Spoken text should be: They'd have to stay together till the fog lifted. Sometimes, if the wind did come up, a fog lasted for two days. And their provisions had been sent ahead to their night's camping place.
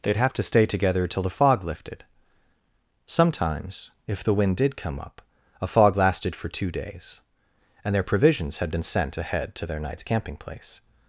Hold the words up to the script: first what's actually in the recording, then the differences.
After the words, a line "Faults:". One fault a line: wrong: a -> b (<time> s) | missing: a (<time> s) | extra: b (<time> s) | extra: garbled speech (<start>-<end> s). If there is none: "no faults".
They'd have to stay together till the fog lifted. Sometimes, if the wind did come up, a fog lasted for two days. And their provisions had been sent ahead to their night's camping place.
Faults:
no faults